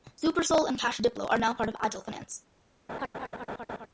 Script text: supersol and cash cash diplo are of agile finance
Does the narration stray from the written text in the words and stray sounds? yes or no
yes